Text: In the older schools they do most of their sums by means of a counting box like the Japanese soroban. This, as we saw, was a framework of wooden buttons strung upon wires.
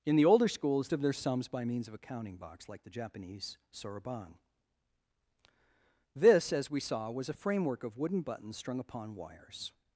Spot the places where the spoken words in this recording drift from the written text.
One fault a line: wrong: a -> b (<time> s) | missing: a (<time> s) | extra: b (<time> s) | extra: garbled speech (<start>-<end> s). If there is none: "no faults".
missing: they do most (0.9 s)